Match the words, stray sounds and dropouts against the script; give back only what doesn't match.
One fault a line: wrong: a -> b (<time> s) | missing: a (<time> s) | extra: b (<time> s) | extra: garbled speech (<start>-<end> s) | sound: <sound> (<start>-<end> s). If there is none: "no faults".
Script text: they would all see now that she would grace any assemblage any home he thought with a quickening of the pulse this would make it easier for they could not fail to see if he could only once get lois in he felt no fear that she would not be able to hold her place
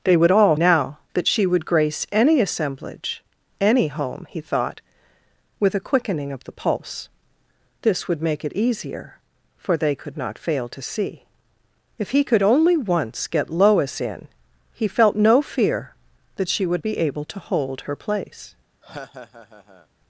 missing: see (0.6 s)
missing: not (16.8 s)
sound: laugh (18.8-19.9 s)